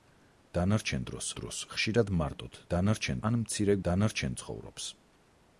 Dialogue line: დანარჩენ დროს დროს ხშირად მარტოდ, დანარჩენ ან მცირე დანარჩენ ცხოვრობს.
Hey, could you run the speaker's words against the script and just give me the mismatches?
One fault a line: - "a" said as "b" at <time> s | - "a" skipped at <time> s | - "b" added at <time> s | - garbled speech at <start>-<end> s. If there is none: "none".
none